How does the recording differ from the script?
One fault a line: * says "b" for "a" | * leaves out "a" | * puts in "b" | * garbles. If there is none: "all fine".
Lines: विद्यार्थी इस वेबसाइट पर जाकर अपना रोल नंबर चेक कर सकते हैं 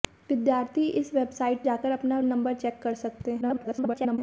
* leaves out "पर"
* leaves out "रोल"
* garbles